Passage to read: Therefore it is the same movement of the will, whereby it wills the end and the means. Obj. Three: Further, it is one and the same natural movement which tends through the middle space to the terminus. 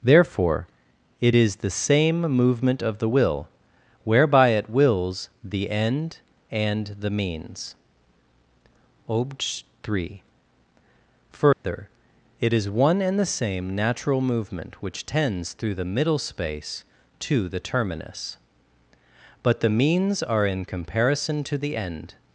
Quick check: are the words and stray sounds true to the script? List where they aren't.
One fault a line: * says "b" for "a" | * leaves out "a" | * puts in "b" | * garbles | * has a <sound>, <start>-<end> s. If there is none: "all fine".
* has a dropout, 11.5-11.6 s
* puts in "But the means are in comparison to the end"